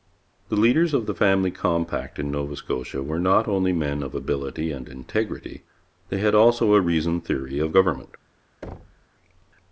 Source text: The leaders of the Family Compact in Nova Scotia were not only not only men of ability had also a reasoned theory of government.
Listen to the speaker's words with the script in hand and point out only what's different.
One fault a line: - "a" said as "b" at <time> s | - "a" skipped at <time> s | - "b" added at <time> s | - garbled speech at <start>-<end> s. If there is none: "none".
- "not only" skipped at 3.7 s
- "and integrity they" added at 4.7 s